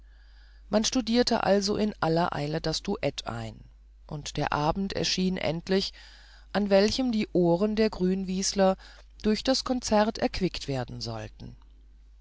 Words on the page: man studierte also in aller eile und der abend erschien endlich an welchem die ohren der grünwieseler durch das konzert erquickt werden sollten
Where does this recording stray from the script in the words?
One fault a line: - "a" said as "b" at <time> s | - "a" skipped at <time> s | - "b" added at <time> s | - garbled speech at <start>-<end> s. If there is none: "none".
- "das duett ein" added at 2.6 s